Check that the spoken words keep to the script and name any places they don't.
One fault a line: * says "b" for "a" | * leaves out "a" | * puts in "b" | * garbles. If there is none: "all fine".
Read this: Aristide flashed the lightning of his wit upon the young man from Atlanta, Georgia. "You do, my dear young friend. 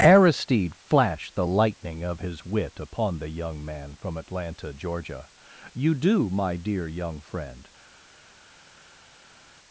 all fine